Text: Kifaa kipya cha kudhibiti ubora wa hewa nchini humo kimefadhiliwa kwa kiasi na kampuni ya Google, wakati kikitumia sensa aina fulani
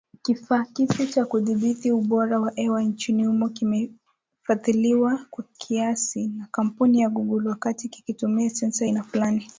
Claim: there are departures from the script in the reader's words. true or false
false